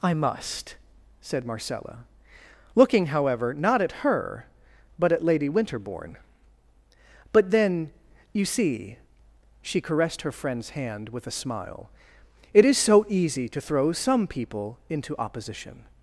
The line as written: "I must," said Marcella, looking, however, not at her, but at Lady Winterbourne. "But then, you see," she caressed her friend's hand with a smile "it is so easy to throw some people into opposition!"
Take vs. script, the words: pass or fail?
pass